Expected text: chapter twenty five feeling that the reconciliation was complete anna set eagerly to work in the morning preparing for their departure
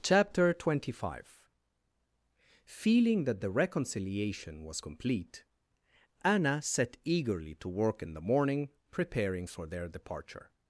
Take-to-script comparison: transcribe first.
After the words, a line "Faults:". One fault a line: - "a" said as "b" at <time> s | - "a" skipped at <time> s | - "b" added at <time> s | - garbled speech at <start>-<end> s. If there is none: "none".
chapter twenty five feeling that the reconciliation was complete anna set eagerly to work in the morning preparing for their departure
Faults:
none